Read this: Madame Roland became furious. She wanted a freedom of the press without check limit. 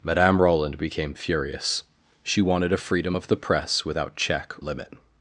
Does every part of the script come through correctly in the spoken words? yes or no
yes